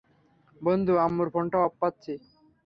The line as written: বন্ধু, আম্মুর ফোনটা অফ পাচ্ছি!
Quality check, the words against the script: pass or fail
pass